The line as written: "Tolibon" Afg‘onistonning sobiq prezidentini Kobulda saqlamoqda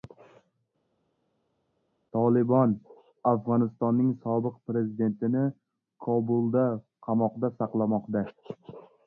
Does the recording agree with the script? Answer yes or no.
no